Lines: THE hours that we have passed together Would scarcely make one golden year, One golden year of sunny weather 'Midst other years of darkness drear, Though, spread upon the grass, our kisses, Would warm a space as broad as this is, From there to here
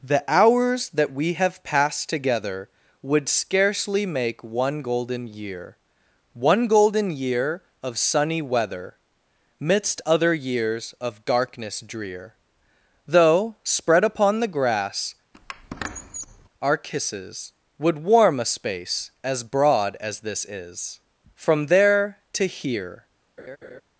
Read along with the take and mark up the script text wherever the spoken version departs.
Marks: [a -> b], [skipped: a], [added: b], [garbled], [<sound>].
THE hours that we have passed together Would scarcely make one golden year, One golden year of sunny weather 'Midst other years of darkness drear, Though, spread upon the grass, [squeak] our kisses, Would warm a space as broad as this is, From there to here [laugh]